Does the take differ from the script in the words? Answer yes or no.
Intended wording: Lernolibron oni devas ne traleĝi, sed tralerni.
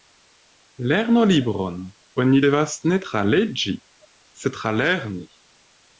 no